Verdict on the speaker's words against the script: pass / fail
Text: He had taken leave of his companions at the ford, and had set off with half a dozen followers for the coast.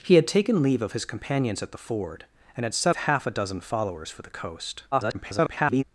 fail